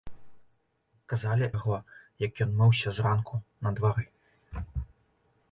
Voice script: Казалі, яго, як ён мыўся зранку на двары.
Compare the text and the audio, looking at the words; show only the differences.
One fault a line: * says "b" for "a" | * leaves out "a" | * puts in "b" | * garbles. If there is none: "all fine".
all fine